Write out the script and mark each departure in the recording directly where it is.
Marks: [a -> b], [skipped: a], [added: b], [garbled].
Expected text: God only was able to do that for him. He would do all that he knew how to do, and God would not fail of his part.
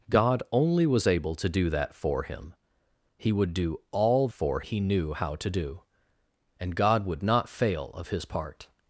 God only was able to do that for him. He would do all [that -> for] he knew how to do, and God would not fail of his part.